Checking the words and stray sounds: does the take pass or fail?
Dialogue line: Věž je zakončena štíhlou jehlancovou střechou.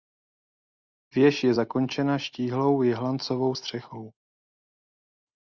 pass